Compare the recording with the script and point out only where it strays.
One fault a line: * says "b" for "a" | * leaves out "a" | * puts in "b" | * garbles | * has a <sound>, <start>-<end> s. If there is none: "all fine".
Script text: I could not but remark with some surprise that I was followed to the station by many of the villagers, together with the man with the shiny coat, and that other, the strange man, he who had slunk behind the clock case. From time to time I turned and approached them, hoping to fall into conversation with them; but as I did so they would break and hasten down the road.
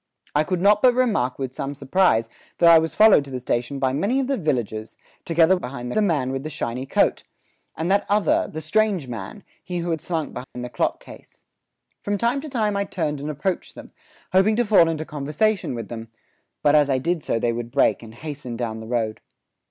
* says "behind" for "with"
* has a dropout, 10.4-10.6 s